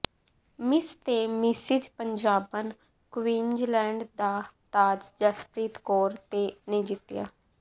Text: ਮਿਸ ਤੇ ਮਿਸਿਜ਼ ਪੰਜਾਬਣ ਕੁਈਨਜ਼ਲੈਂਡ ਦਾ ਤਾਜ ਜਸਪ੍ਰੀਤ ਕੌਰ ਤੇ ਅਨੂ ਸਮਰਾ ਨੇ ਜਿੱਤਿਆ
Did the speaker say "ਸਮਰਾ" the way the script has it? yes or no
no